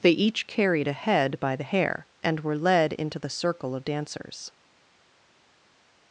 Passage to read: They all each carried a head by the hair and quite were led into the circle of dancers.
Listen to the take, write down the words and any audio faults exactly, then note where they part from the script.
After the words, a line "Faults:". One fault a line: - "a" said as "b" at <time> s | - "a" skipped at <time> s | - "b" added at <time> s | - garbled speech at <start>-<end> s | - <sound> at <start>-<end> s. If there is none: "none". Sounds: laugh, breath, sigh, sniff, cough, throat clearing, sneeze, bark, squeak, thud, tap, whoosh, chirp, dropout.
They each carried a head by the hair and were led into the circle of dancers.
Faults:
- "all" skipped at 0.1 s
- "quite" skipped at 2.4 s